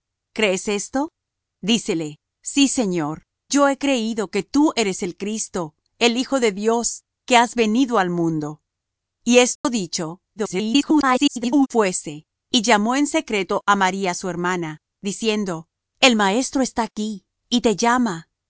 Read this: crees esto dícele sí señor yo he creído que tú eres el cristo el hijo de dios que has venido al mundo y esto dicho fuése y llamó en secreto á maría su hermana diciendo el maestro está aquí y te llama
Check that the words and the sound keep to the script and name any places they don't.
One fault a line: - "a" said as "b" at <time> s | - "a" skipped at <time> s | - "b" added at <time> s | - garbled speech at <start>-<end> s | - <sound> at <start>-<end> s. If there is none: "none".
- dropout at 9.6-9.6 s
- garbled speech at 10.4-11.7 s